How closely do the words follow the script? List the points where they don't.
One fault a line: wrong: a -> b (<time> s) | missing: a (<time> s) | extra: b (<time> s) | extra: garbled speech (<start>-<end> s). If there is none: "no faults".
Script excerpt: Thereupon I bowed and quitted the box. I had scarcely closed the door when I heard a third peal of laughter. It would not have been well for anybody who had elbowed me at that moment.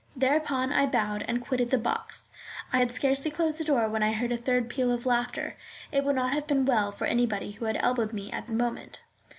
missing: that (8.5 s)